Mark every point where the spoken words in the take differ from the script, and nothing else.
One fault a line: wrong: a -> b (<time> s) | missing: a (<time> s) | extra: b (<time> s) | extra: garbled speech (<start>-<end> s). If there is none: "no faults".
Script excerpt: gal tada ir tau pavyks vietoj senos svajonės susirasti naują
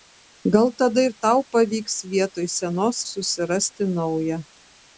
missing: svajonės (3.0 s)